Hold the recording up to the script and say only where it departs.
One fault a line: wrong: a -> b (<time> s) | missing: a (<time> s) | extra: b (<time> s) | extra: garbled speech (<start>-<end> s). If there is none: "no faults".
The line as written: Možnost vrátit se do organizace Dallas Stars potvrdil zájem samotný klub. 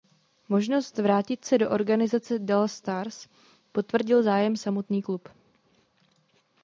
no faults